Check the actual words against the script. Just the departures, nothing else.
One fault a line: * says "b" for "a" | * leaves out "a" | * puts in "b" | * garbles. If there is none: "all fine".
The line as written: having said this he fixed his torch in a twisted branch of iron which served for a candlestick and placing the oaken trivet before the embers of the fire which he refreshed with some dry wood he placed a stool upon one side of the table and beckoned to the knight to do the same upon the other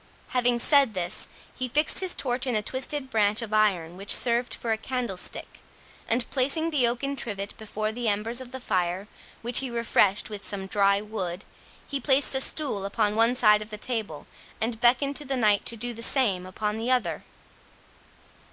all fine